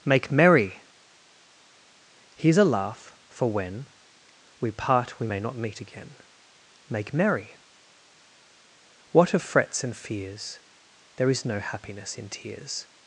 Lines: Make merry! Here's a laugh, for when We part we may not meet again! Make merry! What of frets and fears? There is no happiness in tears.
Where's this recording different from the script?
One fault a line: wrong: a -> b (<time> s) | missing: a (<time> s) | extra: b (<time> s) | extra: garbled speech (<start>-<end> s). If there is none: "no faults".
no faults